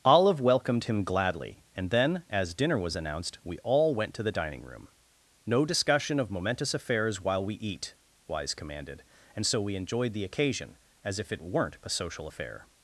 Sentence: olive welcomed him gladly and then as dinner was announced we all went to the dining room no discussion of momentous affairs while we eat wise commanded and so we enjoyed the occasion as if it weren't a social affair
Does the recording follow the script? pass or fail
pass